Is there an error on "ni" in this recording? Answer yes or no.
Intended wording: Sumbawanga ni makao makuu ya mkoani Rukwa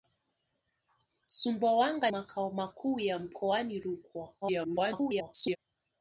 yes